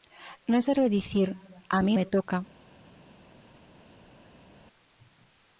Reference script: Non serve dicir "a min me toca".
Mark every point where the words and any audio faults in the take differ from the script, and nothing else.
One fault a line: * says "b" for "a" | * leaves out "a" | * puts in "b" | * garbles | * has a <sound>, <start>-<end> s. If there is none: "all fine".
all fine